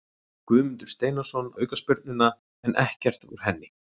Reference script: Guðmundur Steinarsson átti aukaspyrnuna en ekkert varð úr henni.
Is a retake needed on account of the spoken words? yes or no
yes